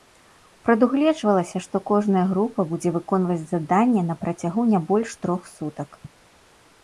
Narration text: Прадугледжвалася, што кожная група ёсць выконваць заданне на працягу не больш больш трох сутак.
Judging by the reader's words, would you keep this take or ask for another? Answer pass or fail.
fail